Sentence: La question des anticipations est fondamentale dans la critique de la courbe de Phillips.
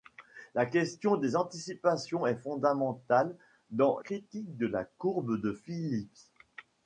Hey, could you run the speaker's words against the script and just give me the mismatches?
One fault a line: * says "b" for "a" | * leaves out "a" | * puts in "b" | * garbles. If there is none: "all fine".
* leaves out "la"